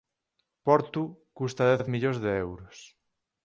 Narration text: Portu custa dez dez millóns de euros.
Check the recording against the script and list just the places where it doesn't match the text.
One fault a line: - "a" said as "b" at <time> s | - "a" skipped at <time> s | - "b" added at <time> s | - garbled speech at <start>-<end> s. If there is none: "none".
none